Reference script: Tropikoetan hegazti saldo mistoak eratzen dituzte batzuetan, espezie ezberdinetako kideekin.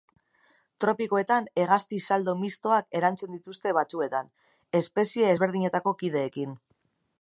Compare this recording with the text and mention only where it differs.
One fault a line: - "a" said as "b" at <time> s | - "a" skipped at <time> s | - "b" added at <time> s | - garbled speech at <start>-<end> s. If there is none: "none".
none